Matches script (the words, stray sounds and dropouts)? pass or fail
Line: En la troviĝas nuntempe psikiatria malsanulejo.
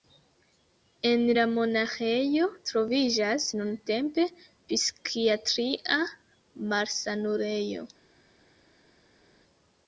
fail